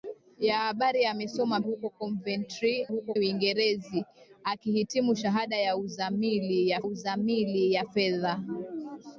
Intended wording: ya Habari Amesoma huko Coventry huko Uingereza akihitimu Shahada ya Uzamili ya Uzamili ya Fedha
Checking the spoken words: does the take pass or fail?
pass